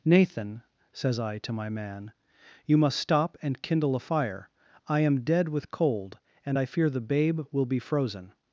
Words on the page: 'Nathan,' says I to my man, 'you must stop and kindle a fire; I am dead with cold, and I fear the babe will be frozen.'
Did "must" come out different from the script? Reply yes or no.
no